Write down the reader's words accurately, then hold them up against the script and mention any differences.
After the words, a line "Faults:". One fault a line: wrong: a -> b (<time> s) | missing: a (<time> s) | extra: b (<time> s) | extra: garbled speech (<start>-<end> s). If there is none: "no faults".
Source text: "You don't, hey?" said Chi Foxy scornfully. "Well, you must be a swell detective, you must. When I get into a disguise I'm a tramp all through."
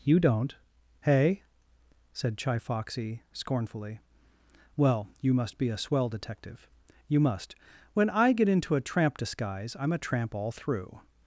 "You don't, hey?" said Chi Foxy scornfully. "Well, you must be a swell detective, you must. When I get into a tramp disguise I'm a tramp all through."
Faults:
extra: tramp (8.8 s)